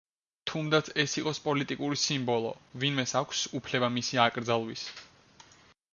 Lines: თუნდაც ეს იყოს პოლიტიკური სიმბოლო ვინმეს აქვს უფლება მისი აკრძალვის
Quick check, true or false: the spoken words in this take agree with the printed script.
true